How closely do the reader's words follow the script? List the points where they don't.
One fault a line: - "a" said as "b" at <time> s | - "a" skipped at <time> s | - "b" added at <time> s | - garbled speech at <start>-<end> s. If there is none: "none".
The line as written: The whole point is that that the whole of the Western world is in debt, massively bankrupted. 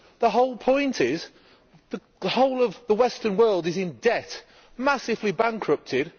- "that" skipped at 2.0 s